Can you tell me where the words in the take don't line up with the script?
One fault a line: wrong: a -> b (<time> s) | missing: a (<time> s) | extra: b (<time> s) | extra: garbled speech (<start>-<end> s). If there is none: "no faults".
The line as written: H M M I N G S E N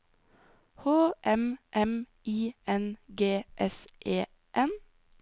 no faults